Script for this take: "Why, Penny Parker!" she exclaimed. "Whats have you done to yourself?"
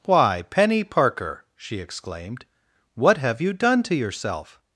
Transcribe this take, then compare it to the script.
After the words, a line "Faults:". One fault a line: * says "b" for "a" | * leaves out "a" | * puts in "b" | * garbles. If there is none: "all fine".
"Why, Penny Parker!" she exclaimed. "What have you done to yourself?"
Faults:
* says "What" for "Whats"